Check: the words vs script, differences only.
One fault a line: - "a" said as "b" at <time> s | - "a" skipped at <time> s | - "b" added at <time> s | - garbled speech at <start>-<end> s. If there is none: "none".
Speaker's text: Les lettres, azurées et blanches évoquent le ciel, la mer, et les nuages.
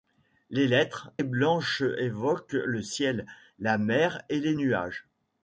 - "azurées" skipped at 1.1 s